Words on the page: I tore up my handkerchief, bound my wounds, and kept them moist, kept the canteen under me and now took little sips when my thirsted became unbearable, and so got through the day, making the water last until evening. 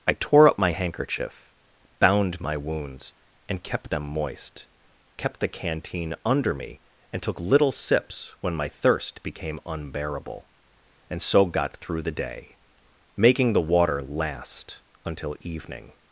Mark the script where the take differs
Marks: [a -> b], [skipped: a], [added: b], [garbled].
I tore up my handkerchief, bound my wounds, and kept them moist, kept the canteen under me and [skipped: now] took little sips when my [thirsted -> thirst] became unbearable, and so got through the day, making the water last until evening.